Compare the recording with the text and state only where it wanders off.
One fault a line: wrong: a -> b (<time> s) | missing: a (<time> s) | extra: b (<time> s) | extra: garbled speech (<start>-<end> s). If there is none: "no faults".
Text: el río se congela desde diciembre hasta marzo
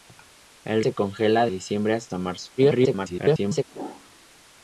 missing: río (0.8 s)
missing: desde (1.5 s)
extra: garbled speech (2.6-3.6 s)